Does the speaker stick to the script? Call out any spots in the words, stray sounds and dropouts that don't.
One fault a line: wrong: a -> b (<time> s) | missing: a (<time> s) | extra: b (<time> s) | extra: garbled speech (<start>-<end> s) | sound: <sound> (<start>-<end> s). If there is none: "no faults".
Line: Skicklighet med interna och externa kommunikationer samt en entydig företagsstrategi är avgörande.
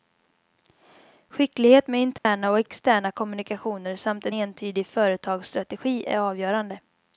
sound: dropout (2.2-2.2 s)